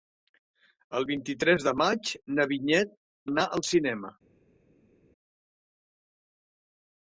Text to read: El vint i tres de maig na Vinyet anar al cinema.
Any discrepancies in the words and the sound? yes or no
no